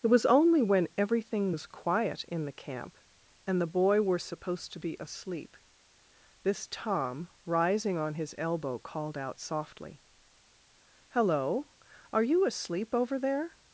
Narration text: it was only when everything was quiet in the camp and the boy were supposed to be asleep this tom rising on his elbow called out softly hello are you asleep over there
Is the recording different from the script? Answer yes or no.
no